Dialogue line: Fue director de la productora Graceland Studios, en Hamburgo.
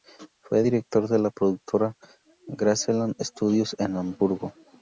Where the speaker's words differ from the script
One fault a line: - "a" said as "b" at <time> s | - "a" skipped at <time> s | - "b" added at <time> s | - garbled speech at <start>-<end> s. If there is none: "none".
none